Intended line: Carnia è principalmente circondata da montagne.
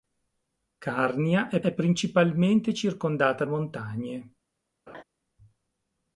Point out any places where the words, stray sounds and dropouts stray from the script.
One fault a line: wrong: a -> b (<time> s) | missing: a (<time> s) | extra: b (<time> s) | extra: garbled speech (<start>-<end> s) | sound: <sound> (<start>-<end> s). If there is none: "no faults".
extra: è (1.6 s)
missing: da (3.5 s)
sound: laugh (4.9-5.0 s)